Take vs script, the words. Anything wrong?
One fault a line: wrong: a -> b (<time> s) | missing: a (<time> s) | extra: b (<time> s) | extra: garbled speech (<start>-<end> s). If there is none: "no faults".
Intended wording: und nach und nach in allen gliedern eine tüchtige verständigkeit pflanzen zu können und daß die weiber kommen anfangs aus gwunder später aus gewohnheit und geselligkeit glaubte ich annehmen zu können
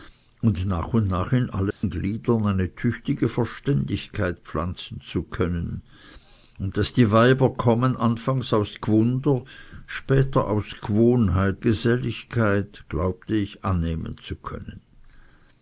missing: und (11.6 s)